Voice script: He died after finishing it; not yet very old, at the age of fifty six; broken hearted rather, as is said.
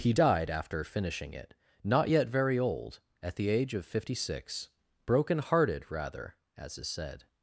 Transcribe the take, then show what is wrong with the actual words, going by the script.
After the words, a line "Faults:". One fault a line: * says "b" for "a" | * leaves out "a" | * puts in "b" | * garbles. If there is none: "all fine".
He died after finishing it; not yet very old, at the age of fifty six; broken hearted rather, as is said.
Faults:
all fine